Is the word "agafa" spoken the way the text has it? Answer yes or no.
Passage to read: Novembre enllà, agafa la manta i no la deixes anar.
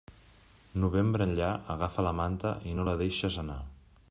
yes